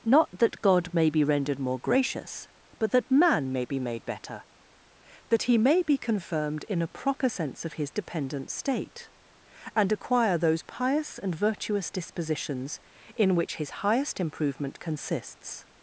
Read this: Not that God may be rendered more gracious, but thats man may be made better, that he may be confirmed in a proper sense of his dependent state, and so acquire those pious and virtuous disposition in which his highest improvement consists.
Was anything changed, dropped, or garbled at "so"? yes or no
yes